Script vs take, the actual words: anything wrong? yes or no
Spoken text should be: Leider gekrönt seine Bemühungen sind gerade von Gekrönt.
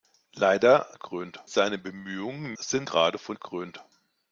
no